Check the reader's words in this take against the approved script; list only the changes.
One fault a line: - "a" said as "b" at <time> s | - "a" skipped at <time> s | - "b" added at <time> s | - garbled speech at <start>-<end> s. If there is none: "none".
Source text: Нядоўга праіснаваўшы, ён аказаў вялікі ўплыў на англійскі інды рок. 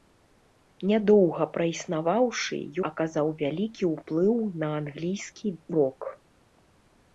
- "ён" skipped at 2.6 s
- "інды" skipped at 5.5 s